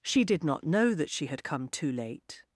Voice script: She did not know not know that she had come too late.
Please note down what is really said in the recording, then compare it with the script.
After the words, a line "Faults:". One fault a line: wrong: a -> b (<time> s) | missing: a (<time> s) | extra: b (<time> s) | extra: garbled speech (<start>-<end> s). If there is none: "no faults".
She did not know that she had come too late.
Faults:
missing: not know (0.9 s)